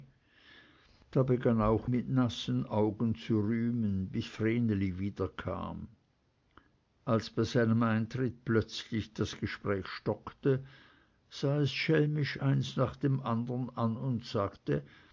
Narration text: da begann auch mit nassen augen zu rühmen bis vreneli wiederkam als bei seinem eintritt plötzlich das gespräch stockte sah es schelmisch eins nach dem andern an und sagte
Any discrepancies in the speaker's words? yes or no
no